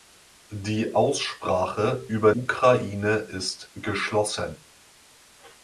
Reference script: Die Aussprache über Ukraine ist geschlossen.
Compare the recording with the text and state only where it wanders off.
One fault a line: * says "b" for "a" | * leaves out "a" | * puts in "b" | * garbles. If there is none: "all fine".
all fine